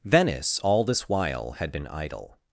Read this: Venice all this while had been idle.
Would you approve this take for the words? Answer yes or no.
yes